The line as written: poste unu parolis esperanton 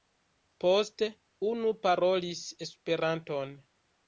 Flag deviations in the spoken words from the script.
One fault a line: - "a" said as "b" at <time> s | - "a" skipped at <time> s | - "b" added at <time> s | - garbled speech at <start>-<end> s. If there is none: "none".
none